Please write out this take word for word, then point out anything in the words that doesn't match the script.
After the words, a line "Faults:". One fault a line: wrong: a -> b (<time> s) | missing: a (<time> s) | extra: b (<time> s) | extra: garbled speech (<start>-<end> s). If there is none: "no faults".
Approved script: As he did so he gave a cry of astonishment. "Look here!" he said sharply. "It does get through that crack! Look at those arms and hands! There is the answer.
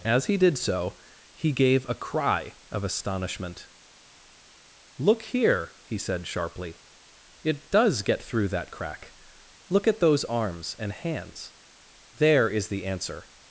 As he did so he gave a cry of astonishment. "Look here!" he said sharply. "It does get through that crack! Look at those arms and hands! There is the answer.
Faults:
no faults